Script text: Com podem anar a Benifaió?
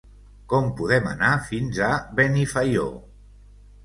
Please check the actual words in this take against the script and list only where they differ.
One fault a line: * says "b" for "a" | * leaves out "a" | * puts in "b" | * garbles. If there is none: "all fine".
* puts in "fins"